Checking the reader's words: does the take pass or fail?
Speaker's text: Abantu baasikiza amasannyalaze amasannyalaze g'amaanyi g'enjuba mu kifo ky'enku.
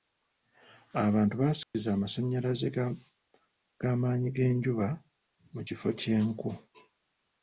fail